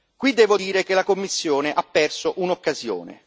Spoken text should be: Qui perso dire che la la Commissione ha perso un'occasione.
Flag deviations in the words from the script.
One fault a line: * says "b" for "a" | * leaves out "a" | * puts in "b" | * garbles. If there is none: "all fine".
* says "devo" for "perso"
* leaves out "la"